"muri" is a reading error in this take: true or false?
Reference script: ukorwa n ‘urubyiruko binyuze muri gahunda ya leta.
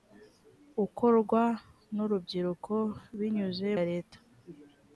true